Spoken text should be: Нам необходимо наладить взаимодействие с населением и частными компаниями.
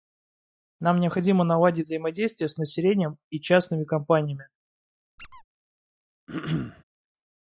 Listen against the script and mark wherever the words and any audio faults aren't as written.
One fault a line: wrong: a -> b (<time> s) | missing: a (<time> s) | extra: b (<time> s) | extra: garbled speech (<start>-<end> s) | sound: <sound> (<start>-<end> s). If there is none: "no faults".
sound: squeak (5.2-5.4 s)
sound: throat clearing (6.3-6.8 s)